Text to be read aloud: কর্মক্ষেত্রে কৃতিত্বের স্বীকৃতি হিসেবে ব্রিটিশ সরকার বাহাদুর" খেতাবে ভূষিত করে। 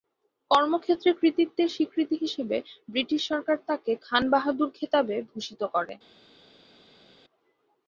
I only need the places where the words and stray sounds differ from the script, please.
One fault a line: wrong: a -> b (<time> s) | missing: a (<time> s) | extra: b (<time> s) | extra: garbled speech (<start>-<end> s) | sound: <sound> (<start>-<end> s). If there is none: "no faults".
extra: তাকে খান (3.7 s)